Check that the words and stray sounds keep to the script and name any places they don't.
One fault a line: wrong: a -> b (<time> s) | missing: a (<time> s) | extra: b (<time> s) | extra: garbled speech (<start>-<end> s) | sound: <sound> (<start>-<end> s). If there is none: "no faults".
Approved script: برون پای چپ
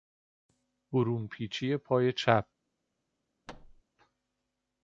extra: پیچی (1.3 s)
sound: thud (3.5-3.8 s)